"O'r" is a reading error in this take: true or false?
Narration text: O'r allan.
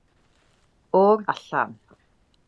false